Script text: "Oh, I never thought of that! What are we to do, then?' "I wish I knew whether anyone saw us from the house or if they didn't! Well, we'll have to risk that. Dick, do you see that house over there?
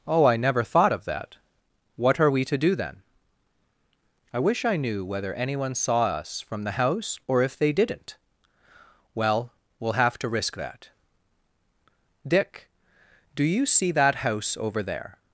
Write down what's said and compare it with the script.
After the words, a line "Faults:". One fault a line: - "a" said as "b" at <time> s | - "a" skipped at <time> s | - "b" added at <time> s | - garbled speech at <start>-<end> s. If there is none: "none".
"Oh, I never thought of that! What are we to do, then?' "I wish I knew whether anyone saw us from the house or if they didn't! Well, we'll have to risk that. Dick, do you see that house over there?
Faults:
none